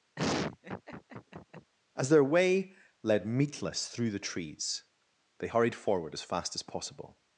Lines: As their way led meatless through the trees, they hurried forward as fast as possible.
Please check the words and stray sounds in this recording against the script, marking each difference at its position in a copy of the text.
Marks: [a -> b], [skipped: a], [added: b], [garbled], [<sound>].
[laugh] As their way led meatless through the trees, they hurried forward as fast as possible.